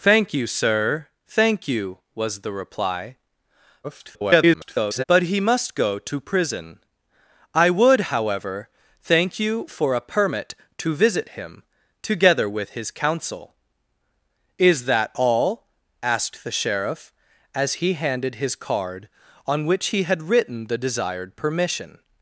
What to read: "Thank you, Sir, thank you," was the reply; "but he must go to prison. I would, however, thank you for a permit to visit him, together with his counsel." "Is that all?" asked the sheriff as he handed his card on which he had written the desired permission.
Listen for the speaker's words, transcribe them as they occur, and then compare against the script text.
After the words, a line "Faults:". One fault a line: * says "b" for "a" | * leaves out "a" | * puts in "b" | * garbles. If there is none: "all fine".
"Thank you, Sir, thank you," was the reply; [garbled] "but he must go to prison. I would, however, thank you for a permit to visit him, together with his counsel." "Is that all?" asked the sheriff as he handed his card on which he had written the desired permission.
Faults:
* garbles